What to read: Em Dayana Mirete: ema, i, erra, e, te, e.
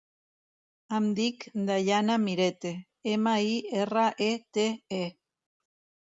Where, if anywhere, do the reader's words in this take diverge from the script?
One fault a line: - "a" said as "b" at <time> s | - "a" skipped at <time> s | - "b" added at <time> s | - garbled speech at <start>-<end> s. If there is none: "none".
- "dic" added at 1.2 s